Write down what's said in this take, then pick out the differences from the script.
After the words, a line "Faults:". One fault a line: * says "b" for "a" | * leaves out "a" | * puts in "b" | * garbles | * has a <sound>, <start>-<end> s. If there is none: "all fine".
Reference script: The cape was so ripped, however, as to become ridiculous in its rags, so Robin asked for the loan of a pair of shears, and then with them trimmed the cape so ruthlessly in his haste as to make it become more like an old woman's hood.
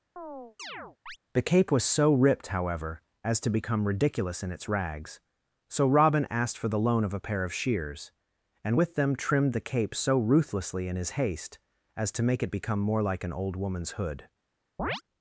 The cape was so ripped, however, as to become ridiculous in its rags, so Robin asked for the loan of a pair of shears, and with them trimmed the cape so ruthlessly in his haste as to make it become more like an old woman's hood.
Faults:
* has a chirp, 0.2-1.2 s
* leaves out "then"
* has a chirp, 14.8-15.0 s